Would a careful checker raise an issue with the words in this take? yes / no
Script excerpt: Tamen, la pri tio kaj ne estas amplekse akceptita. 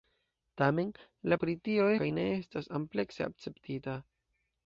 no